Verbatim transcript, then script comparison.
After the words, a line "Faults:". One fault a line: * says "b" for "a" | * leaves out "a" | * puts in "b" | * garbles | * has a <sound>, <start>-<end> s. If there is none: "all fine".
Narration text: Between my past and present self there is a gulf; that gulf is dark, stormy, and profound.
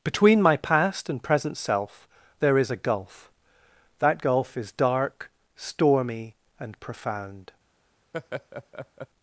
Between my past and present self there is a gulf; that gulf is dark, stormy, and profound.
Faults:
* has a laugh, 8.1-9.1 s